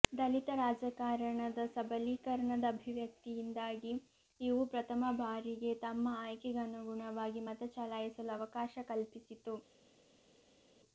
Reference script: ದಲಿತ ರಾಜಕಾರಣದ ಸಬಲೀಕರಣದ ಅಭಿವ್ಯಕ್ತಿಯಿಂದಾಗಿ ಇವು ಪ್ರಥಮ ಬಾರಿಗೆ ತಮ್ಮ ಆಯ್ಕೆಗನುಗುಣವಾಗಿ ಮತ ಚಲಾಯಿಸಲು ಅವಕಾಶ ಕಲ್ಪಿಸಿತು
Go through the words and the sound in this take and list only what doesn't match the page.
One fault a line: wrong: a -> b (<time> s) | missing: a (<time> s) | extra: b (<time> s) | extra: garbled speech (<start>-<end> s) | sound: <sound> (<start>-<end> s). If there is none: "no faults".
no faults